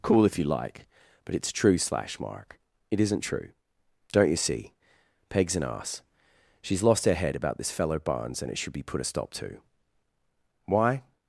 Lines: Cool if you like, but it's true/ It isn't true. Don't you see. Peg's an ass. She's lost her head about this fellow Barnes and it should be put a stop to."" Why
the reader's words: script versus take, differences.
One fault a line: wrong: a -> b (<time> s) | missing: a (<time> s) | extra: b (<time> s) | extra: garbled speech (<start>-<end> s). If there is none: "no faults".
extra: slash mark (1.8 s)